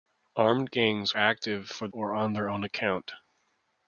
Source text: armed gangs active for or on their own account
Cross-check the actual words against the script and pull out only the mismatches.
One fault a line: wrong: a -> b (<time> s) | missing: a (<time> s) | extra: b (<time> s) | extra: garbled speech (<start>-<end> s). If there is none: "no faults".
no faults